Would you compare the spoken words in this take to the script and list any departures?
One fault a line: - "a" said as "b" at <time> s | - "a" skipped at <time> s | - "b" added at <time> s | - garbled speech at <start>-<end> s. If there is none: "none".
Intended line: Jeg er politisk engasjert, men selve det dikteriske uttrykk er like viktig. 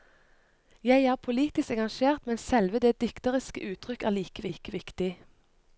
- "like" added at 4.5 s